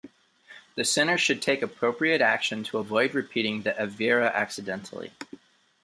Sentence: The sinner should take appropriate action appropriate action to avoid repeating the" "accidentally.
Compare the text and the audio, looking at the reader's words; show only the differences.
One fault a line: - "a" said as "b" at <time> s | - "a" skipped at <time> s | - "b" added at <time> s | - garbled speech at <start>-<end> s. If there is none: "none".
- "appropriate action" skipped at 2.6 s
- "aveira" added at 3.7 s